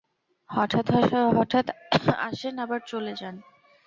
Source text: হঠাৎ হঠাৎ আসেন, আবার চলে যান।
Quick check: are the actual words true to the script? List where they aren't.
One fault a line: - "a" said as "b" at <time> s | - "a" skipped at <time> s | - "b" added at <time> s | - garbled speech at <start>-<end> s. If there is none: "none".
none